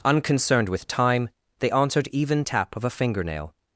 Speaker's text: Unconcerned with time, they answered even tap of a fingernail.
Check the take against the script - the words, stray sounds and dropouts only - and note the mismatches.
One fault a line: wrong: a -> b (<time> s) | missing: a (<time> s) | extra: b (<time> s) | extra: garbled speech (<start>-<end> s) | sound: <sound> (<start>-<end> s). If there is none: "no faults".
no faults